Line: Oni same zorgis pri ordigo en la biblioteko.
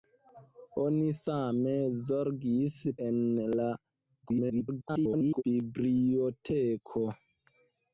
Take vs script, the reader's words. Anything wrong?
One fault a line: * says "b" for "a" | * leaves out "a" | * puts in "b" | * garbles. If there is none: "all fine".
* leaves out "pri ordigo"
* garbles